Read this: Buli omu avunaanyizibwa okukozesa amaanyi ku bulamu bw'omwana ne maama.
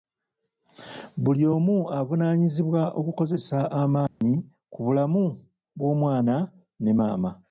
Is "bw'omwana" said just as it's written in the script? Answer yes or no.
yes